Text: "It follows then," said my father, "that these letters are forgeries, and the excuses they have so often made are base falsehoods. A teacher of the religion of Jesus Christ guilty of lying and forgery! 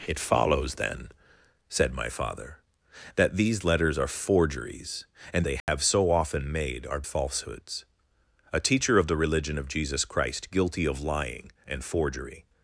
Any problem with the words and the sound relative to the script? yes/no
yes